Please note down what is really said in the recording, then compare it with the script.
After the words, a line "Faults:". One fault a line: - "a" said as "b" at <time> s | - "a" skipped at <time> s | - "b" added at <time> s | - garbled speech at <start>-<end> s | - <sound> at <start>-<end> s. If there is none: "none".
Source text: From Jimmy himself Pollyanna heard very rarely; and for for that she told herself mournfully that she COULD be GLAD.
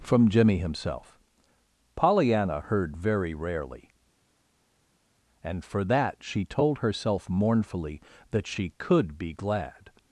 From Jimmy himself Pollyanna heard very rarely; and for that she told herself mournfully that she COULD be GLAD.
Faults:
- "for" skipped at 5.8 s